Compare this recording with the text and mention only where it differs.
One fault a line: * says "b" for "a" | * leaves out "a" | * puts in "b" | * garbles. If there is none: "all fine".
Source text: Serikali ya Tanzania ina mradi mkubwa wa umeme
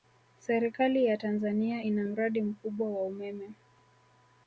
all fine